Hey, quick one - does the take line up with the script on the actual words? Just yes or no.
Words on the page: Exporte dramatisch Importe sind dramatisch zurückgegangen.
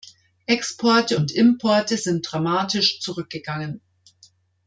no